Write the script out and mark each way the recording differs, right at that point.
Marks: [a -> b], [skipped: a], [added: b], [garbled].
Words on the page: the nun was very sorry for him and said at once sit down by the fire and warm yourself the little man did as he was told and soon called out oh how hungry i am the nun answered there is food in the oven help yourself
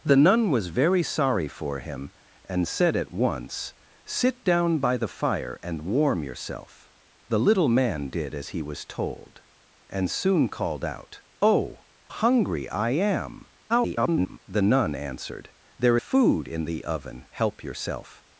the nun was very sorry for him and said at once sit down by the fire and warm yourself the little man did as he was told and soon called out oh [skipped: how] hungry i am [garbled] the nun answered there [skipped: is] food in the oven help yourself